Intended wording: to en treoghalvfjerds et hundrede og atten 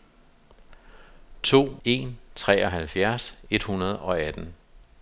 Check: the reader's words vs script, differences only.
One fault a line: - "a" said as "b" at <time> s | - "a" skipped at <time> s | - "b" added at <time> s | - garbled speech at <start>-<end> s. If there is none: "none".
none